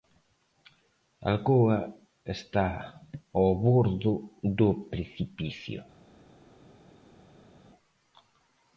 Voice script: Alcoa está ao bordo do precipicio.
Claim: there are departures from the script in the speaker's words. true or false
false